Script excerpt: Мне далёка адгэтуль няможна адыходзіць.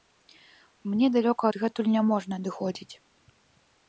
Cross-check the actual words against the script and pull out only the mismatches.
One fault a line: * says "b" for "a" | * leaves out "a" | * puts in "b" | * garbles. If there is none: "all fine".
all fine